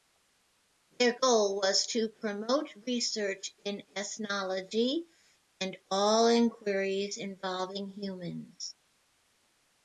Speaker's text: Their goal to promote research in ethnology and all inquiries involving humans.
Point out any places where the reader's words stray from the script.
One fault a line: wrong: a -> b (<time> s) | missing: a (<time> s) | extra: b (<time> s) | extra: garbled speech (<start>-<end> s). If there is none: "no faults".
extra: was (1.6 s)